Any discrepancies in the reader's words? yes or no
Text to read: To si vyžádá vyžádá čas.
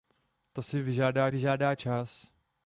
no